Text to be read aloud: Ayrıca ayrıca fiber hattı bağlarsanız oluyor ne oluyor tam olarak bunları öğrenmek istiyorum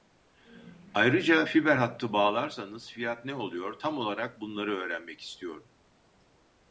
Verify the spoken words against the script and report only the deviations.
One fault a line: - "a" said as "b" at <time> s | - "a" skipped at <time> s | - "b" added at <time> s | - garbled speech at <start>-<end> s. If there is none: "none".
- "ayrıca" skipped at 1.4 s
- "oluyor" said as "fiyat" at 2.9 s